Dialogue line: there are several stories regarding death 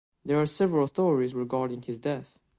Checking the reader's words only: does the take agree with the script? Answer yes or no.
no